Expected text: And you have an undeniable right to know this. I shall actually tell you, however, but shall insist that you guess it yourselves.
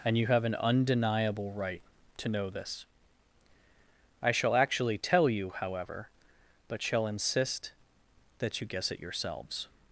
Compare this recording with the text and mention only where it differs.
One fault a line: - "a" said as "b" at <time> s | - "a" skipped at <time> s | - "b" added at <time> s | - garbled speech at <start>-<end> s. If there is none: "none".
none